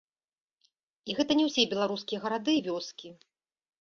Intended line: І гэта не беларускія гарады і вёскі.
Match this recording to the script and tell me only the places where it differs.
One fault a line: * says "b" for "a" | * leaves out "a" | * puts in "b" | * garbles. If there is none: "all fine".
* puts in "ўсе"